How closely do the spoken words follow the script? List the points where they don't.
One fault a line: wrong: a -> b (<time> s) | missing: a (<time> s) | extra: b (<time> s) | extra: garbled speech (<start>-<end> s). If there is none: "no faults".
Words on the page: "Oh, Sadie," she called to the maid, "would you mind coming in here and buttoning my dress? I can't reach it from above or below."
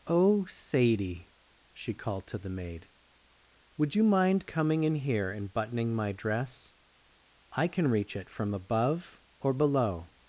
wrong: can't -> can (7.7 s)